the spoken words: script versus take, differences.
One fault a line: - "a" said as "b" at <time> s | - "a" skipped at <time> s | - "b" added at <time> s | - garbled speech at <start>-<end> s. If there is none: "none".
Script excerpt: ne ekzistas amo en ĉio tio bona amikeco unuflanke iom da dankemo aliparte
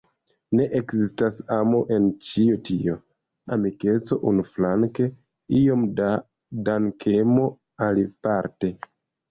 - "bona" skipped at 2.9 s